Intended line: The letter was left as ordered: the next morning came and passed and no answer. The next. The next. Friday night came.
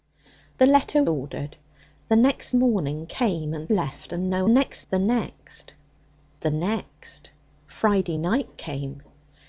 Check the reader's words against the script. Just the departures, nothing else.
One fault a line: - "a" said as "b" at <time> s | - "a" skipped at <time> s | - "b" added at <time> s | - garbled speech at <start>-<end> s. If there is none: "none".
- "was left as" skipped at 1.0 s
- "passed" said as "left" at 3.7 s
- "answer" said as "next" at 4.5 s